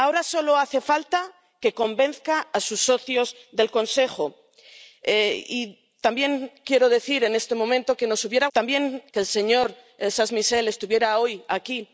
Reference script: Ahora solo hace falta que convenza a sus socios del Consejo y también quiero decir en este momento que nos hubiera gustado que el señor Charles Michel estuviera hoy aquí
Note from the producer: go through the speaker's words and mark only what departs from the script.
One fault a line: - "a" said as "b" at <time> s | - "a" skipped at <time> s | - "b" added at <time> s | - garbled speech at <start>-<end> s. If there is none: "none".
- "gustado" said as "también" at 8.5 s